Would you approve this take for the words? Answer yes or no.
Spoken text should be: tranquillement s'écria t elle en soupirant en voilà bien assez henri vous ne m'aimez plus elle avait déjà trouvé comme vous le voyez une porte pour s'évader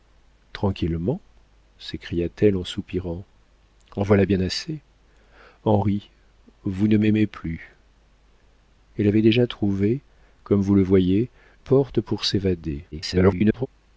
no